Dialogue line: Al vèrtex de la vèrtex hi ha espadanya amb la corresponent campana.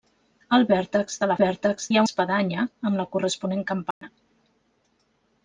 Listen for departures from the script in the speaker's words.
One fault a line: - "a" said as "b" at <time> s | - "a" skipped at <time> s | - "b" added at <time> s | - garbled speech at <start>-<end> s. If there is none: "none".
none